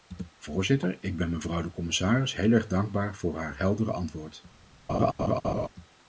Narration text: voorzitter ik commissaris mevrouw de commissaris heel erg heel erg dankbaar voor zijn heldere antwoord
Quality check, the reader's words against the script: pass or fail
fail